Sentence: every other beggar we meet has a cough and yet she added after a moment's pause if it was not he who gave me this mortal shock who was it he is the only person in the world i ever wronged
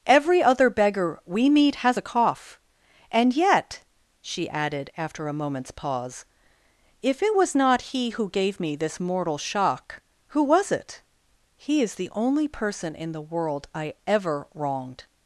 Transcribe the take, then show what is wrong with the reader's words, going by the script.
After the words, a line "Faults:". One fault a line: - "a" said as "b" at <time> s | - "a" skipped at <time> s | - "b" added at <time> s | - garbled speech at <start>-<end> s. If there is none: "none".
every other beggar we meet has a cough and yet she added after a moment's pause if it was not he who gave me this mortal shock who was it he is the only person in the world i ever wronged
Faults:
none